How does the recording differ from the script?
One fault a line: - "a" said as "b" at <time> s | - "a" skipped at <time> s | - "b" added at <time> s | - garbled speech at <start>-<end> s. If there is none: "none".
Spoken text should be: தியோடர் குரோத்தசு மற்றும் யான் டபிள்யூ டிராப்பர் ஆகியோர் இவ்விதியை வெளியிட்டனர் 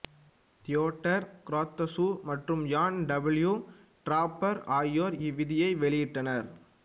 none